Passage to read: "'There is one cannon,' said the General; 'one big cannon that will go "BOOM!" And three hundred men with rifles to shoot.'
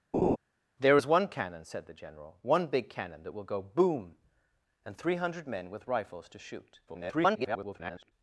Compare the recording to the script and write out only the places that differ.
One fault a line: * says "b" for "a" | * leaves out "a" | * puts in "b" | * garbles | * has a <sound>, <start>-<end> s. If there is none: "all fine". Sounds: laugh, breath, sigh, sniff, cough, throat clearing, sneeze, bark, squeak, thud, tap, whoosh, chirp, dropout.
* has a laugh, 0.1-0.4 s
* garbles